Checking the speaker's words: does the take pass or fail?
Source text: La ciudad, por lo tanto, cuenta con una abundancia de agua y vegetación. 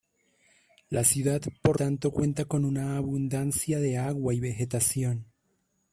fail